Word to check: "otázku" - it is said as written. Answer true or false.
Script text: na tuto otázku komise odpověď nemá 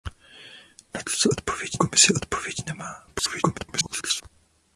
false